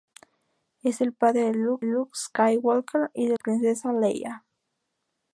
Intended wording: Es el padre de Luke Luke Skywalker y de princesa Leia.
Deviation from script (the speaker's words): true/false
false